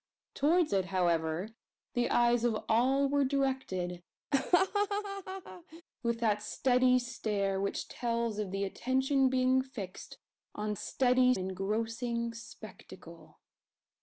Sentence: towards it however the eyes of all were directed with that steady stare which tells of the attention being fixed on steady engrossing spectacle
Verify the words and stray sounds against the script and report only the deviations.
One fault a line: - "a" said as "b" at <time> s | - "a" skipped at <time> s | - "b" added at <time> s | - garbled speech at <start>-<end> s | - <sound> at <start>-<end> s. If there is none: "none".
- laugh at 4.3-5.8 s